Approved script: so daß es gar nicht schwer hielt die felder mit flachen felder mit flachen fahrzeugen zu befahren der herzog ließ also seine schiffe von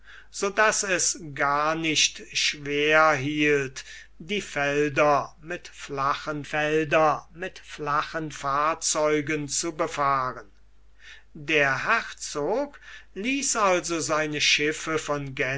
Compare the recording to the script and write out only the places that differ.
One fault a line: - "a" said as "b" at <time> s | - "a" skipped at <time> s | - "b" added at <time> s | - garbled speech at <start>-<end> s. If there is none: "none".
none